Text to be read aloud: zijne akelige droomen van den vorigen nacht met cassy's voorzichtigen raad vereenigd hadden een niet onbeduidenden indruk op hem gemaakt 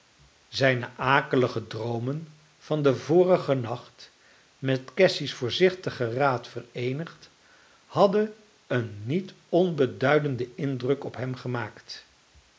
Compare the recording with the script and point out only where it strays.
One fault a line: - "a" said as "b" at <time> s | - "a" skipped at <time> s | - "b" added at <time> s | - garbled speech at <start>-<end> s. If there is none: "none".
none